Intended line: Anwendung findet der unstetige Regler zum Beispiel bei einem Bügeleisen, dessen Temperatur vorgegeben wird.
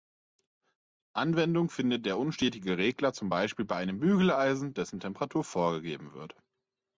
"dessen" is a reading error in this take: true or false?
false